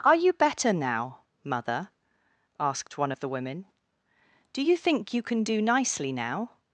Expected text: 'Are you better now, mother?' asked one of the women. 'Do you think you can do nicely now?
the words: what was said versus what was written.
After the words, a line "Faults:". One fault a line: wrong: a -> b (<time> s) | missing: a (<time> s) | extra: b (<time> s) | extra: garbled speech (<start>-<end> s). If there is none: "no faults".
'Are you better now, mother?' asked one of the women. 'Do you think you can do nicely now?
Faults:
no faults